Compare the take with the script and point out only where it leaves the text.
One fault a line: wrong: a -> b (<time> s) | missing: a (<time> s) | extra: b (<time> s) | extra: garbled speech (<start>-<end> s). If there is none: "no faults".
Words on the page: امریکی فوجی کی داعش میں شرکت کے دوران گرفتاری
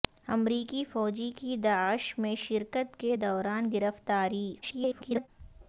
extra: garbled speech (4.6-5.3 s)